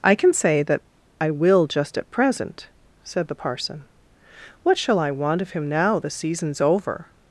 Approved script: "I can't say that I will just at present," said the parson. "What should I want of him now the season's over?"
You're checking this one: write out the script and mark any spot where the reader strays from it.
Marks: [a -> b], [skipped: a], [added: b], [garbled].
"I [can't -> can] say that I will just at present," said the parson. "What [should -> shall] I want of him now the season's over?"